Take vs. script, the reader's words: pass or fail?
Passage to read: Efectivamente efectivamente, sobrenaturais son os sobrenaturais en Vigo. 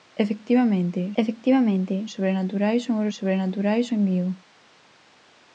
pass